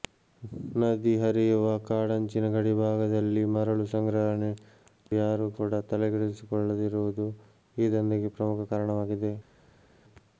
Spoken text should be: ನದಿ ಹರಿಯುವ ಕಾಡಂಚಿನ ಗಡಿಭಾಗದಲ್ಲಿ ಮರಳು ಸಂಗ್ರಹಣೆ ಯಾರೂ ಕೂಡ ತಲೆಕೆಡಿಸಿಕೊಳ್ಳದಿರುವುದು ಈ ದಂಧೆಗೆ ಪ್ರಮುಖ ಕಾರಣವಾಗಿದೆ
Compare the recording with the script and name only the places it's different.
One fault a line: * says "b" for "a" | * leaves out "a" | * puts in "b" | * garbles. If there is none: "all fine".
all fine